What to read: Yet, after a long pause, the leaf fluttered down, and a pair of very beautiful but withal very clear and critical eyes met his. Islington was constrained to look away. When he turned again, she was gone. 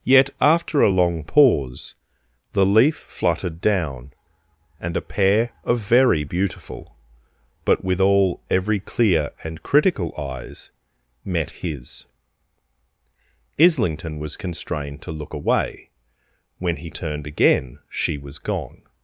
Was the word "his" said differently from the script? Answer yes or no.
no